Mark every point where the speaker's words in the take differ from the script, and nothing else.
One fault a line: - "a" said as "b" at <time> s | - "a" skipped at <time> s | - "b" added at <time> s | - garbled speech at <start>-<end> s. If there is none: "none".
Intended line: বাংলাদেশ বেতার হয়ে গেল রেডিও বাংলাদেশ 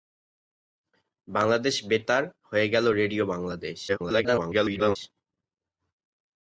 - garbled speech at 3.9-5.0 s